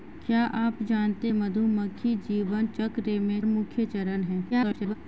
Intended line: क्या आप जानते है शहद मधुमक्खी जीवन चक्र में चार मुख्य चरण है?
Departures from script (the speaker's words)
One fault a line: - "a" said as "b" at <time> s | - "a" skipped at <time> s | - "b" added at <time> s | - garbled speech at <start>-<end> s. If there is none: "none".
- "है शहद" skipped at 1.3 s
- "चार" skipped at 3.4 s
- garbled speech at 4.5-5.0 s